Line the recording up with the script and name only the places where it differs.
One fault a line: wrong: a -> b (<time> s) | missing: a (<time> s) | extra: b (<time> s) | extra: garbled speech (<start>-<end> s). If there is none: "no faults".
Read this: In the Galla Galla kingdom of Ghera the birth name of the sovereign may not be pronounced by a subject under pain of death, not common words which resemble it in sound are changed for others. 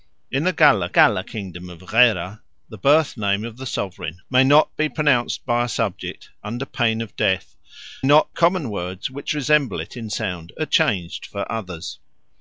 no faults